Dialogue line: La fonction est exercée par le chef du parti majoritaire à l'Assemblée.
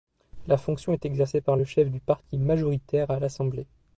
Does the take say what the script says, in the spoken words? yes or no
yes